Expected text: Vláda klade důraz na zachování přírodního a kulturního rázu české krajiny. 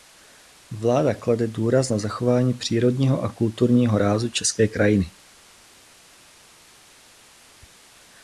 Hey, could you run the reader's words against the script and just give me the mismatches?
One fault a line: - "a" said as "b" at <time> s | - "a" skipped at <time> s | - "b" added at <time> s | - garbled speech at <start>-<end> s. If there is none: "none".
none